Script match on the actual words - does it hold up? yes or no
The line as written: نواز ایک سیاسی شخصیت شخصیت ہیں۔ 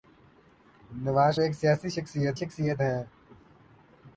yes